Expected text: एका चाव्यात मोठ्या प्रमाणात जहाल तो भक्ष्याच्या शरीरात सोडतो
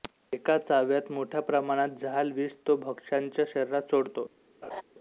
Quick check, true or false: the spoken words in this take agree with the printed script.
false